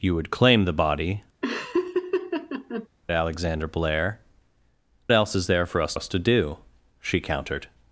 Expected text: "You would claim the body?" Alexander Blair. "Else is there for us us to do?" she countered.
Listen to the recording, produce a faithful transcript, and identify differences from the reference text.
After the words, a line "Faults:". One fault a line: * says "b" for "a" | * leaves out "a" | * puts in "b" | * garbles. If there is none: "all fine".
"You would claim the body?" Alexander Blair. "Else is there for us us to do?" she countered.
Faults:
all fine